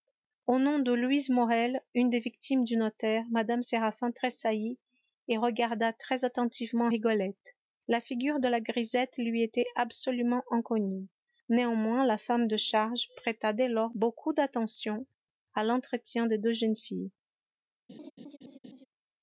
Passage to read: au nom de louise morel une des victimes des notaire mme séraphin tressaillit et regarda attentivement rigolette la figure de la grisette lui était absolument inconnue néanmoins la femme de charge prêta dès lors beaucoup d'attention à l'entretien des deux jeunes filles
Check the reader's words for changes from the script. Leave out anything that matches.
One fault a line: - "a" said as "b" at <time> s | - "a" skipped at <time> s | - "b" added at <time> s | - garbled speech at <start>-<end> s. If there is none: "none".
- "des" said as "du" at 2.6 s
- "très" added at 5.9 s